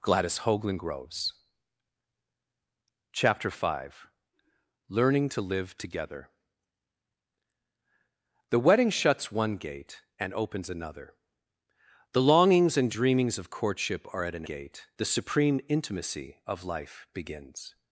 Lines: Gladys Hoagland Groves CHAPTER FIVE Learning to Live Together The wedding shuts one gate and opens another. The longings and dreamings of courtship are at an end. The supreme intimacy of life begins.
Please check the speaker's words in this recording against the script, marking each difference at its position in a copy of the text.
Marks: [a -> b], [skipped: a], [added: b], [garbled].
Gladys Hoagland Groves CHAPTER FIVE Learning to Live Together The wedding shuts one gate and opens another. The longings and dreamings of courtship are at an [end. -> gate] The supreme intimacy of life begins.